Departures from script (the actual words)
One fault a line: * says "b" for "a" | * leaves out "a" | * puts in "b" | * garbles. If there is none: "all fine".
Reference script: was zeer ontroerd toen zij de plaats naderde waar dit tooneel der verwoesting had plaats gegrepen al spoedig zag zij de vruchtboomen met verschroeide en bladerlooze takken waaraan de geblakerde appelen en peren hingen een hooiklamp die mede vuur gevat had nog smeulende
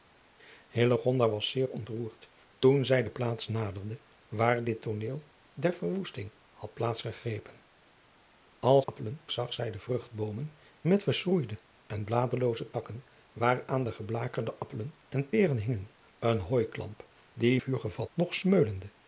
* says "appelen" for "spoedig"
* leaves out "mede"
* leaves out "had"